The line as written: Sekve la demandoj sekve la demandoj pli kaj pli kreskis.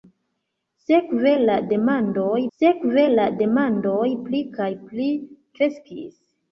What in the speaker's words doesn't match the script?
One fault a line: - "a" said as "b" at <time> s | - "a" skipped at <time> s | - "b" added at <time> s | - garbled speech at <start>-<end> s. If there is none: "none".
none